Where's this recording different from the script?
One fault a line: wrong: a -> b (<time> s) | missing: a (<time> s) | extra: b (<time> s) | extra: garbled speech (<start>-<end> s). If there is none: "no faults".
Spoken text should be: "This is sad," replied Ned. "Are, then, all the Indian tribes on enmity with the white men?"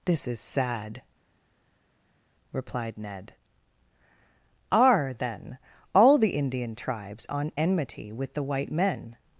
no faults